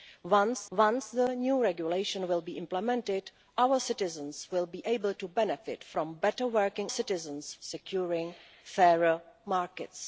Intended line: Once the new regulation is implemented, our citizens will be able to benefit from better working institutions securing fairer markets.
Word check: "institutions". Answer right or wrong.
wrong